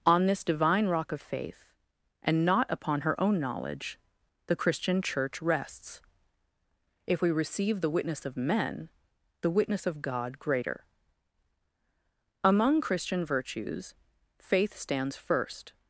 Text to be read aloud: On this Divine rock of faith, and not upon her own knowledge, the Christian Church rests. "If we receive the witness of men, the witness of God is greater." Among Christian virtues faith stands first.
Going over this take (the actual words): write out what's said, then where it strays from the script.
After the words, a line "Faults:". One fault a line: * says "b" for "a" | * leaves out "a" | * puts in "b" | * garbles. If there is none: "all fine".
On this Divine rock of faith, and not upon her own knowledge, the Christian Church rests. "If we receive the witness of men, the witness of God greater." Among Christian virtues faith stands first.
Faults:
* leaves out "is"